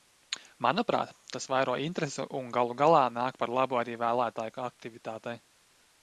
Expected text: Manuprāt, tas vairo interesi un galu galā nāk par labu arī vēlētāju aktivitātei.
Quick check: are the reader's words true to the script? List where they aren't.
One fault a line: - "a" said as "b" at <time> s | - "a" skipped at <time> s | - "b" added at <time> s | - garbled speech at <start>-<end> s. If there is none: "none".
none